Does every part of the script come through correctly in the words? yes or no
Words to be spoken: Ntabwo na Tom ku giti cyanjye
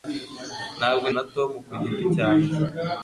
yes